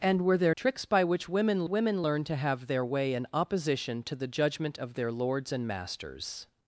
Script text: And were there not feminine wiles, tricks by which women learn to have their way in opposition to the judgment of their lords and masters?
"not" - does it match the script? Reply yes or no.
no